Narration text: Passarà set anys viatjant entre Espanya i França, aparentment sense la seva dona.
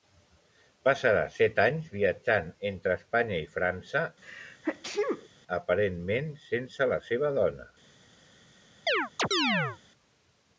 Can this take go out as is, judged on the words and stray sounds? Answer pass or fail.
fail